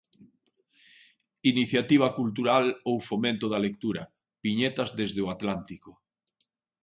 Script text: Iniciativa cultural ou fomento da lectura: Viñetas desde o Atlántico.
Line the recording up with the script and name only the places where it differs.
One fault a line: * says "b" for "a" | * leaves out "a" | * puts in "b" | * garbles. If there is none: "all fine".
all fine